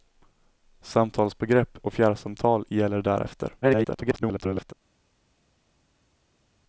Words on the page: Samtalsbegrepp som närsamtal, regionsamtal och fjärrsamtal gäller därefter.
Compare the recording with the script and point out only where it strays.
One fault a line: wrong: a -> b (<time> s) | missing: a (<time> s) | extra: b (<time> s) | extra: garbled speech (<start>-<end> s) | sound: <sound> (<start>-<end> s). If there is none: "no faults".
missing: som närsamtal regionsamtal (1.8 s)
extra: garbled speech (3.6-4.7 s)